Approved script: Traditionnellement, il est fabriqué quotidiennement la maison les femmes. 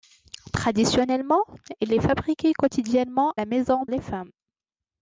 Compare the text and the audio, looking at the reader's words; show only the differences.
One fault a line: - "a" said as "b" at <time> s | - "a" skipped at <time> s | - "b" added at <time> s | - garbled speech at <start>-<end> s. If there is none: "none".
none